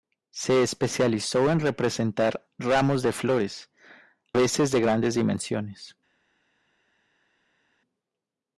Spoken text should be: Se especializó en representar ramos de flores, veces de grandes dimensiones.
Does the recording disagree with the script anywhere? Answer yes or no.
no